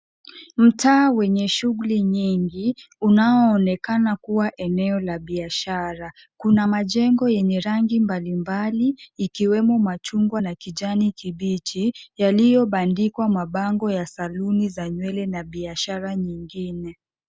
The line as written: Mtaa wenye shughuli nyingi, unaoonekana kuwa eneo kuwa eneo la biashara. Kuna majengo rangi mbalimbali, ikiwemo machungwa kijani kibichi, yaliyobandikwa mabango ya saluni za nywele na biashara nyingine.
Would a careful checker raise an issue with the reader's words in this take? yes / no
yes